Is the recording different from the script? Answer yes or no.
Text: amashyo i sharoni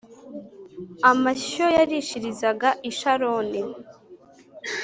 yes